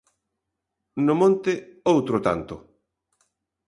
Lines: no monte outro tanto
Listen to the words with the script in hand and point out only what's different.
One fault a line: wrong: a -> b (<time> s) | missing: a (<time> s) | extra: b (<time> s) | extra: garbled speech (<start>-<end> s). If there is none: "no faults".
no faults